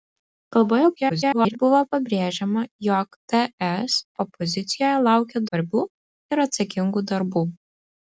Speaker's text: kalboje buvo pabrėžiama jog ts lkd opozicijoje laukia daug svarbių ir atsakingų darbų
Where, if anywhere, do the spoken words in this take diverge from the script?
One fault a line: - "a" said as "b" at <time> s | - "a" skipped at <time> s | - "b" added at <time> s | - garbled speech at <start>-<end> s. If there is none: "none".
- garbled speech at 1.0-1.6 s
- "lkd" skipped at 4.0 s
- "daug" skipped at 5.4 s